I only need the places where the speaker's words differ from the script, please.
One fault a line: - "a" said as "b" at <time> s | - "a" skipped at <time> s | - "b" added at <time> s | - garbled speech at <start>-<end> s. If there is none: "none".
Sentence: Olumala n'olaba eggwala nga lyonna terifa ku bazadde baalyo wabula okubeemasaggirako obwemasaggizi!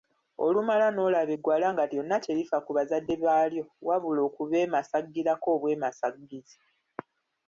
none